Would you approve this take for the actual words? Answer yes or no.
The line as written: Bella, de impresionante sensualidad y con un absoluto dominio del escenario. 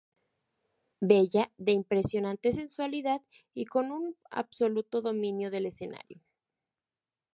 yes